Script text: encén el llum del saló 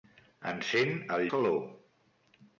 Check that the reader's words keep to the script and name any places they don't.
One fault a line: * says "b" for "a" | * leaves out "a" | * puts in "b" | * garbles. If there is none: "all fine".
* leaves out "llum del"